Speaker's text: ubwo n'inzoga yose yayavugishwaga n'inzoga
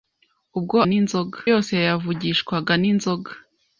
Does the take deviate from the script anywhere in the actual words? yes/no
no